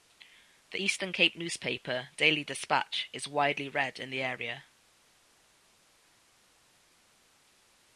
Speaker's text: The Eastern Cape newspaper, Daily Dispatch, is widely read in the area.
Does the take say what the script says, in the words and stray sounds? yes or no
yes